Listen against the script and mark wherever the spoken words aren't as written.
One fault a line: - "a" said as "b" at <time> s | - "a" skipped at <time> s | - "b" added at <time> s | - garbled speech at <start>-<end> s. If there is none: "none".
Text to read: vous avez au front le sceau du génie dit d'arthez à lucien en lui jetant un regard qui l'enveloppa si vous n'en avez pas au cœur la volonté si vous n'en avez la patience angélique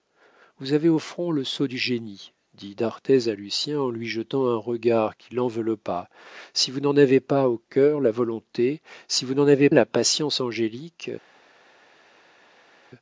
none